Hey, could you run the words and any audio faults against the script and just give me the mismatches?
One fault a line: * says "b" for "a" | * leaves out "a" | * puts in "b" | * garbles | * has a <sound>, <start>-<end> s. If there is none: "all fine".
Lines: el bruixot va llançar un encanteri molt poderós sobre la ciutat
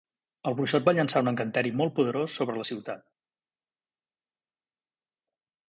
all fine